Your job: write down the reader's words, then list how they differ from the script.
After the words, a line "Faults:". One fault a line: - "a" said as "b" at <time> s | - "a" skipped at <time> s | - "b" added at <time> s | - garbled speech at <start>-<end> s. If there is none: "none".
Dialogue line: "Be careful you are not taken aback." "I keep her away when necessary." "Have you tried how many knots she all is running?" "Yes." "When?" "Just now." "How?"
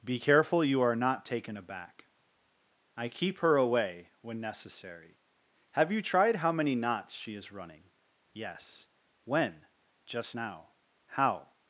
"Be careful you are not taken aback." "I keep her away when necessary." "Have you tried how many knots she is running?" "Yes." "When?" "Just now." "How?"
Faults:
- "all" skipped at 7.4 s